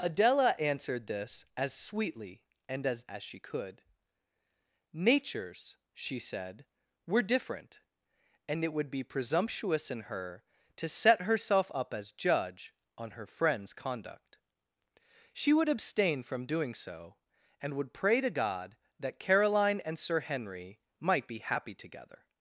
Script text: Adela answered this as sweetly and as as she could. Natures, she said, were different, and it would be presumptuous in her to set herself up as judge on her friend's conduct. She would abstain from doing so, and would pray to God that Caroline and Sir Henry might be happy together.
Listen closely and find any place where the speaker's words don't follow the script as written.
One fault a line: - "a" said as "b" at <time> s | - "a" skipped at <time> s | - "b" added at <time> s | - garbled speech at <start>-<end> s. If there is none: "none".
none